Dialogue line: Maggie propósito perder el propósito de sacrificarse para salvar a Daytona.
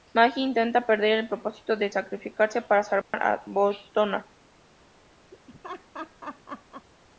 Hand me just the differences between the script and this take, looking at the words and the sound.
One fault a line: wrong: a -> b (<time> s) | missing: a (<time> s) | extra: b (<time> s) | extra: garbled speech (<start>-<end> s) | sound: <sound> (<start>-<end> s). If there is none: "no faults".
wrong: propósito -> intenta (0.4 s)
sound: dropout (3.0-3.1 s)
sound: laugh (5.3-6.9 s)